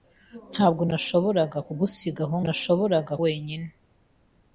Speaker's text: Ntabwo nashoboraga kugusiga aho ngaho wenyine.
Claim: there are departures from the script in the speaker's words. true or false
true